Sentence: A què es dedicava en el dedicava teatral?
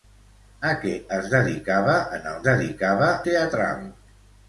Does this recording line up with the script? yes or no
yes